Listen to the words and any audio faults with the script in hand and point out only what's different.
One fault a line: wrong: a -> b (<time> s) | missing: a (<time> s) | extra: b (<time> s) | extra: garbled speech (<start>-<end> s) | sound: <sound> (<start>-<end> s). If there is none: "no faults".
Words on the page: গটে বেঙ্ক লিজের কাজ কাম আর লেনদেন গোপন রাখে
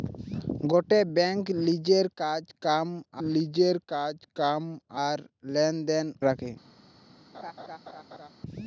extra: লিজের কাজ কাম (3.3 s)
missing: গোপন (6.1 s)
sound: laugh (7.3-8.3 s)